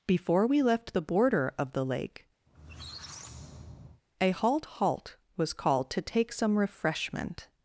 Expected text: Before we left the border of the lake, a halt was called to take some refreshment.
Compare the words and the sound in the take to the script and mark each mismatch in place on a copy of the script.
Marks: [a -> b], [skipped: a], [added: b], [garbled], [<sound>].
Before we left the border of the lake, [squeak] a halt [added: halt] was called to take some refreshment.